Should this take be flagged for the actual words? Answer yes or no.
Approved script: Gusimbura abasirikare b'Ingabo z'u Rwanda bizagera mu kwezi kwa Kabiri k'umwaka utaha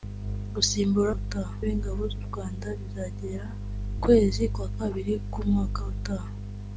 yes